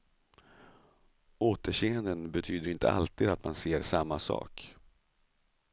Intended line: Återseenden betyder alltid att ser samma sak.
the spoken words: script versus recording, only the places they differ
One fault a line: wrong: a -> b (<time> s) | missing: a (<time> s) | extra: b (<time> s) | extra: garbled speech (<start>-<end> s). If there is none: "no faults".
extra: inte (2.7 s)
extra: man (3.4 s)